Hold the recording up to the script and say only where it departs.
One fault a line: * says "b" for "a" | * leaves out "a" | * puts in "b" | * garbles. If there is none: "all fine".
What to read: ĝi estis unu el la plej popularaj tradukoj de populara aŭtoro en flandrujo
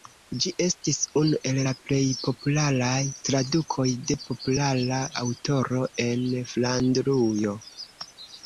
all fine